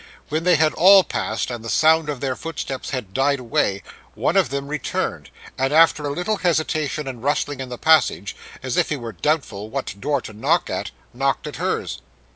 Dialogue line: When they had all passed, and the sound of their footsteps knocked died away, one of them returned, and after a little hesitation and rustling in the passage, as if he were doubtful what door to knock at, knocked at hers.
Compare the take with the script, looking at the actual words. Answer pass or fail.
fail